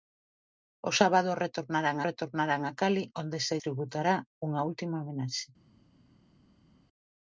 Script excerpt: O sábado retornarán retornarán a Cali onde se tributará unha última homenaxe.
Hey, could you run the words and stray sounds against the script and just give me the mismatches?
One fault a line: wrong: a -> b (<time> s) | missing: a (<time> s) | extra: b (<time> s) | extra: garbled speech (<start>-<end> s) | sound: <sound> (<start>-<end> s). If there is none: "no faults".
no faults